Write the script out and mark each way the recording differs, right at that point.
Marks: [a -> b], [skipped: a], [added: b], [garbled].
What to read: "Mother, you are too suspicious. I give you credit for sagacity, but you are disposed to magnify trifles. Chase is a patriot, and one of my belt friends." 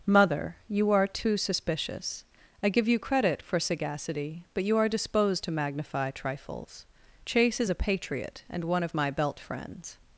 "Mother, you are too suspicious. I give you credit for sagacity, but you are disposed to magnify trifles. Chase is a patriot, and one of my belt friends."